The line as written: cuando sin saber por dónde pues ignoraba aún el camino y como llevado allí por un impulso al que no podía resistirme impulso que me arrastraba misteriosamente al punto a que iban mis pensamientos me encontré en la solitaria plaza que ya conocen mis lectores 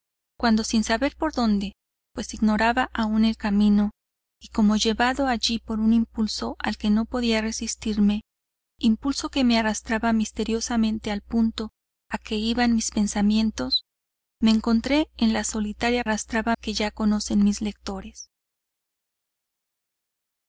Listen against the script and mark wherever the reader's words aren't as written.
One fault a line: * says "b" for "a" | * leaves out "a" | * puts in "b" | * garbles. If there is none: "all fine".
* says "arrastraba" for "plaza"